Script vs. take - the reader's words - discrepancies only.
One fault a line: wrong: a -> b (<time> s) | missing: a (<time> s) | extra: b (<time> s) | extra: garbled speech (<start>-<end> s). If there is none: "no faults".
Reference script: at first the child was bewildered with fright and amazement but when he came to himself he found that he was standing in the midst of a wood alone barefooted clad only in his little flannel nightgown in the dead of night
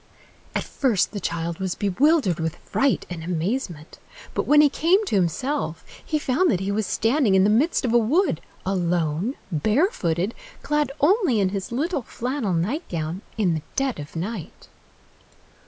no faults